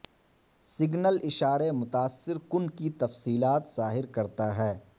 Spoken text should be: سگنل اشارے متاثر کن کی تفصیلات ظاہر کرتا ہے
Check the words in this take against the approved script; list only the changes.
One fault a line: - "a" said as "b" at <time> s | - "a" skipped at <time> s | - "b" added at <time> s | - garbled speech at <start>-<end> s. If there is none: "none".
none